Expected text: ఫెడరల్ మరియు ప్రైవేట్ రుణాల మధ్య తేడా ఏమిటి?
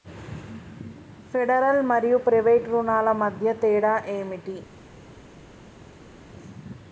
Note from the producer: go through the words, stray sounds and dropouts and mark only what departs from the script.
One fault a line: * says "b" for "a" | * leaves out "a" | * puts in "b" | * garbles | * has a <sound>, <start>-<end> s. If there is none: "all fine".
all fine